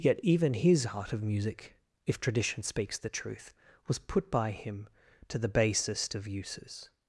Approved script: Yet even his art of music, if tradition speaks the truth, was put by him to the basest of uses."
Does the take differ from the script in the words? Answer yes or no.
no